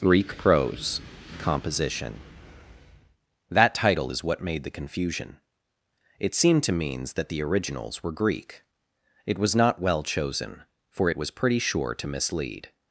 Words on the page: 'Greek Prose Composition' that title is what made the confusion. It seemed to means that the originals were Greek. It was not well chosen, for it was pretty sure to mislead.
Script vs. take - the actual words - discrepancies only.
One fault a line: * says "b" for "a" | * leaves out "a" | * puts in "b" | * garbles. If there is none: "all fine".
all fine